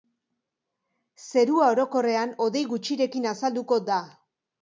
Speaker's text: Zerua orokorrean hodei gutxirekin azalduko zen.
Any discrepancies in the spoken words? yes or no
yes